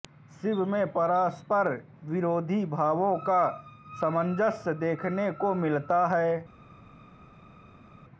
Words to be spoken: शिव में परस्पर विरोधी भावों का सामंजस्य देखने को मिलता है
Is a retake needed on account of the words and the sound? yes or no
no